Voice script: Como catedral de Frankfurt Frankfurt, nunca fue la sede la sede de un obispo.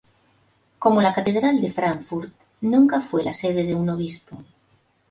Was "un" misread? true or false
false